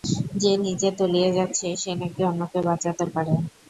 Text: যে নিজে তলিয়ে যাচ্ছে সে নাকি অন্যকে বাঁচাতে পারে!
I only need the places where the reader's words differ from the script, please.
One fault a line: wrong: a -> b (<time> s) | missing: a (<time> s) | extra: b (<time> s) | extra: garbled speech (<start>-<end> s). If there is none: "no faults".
no faults